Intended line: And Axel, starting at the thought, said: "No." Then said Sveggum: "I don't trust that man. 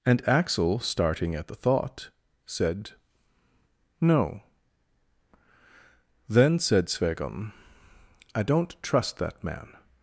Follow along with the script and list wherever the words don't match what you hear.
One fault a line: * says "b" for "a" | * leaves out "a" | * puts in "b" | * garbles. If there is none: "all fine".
all fine